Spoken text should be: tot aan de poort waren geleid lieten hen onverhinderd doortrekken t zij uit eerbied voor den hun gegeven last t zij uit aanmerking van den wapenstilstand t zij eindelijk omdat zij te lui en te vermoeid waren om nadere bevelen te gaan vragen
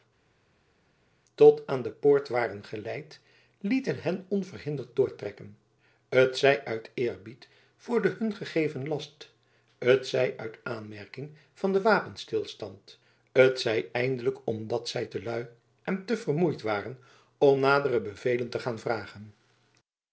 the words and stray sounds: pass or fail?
pass